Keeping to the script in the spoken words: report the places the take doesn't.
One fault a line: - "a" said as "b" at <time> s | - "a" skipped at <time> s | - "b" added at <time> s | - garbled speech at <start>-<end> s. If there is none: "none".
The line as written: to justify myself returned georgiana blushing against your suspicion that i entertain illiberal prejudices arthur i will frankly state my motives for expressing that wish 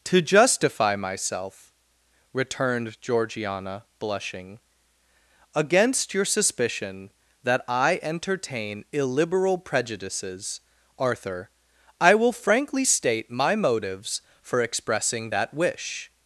none